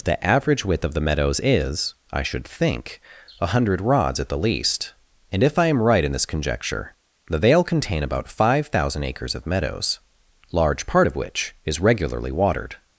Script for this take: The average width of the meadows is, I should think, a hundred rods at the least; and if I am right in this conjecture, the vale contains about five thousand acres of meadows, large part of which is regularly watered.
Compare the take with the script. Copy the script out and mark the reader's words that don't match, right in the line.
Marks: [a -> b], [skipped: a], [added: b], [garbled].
The average width of the meadows is, I should think, a hundred rods at the least; and if I am right in this conjecture, the vale [contains -> contain] about five thousand acres of meadows, large part of which is regularly watered.